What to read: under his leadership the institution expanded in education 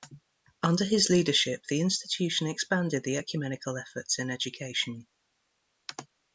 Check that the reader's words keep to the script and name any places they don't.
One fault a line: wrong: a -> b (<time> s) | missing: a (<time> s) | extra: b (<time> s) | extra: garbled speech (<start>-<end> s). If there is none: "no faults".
extra: the ecumenical efforts (3.0 s)